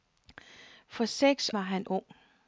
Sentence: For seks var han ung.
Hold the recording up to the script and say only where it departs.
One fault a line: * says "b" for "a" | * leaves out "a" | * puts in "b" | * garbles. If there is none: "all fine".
all fine